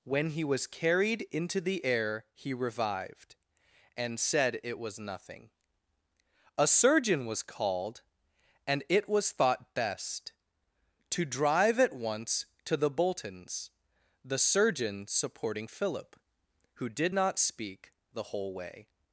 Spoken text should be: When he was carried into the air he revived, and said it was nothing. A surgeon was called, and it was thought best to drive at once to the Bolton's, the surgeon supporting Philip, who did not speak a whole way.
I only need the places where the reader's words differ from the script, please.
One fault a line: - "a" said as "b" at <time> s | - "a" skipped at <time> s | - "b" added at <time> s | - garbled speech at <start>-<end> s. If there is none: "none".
- "a" said as "the" at 18.1 s